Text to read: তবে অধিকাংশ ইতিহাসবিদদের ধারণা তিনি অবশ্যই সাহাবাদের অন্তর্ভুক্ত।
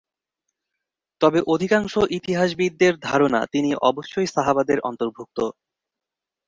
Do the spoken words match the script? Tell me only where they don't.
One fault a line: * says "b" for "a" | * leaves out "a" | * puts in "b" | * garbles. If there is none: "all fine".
all fine